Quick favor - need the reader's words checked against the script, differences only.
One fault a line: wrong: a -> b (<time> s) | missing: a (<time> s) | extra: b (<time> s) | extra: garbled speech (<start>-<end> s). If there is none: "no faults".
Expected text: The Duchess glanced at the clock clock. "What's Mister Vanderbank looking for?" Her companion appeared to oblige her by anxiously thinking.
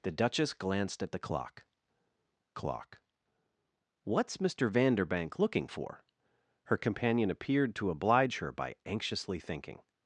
no faults